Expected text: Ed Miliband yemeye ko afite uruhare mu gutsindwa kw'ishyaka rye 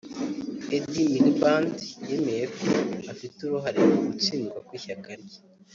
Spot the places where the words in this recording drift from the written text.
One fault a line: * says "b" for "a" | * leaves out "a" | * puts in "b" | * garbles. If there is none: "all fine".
all fine